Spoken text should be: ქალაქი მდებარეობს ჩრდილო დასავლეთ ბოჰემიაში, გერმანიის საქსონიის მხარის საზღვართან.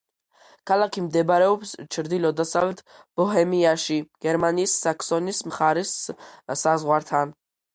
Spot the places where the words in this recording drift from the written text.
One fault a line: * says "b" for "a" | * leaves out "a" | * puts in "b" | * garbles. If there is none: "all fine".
all fine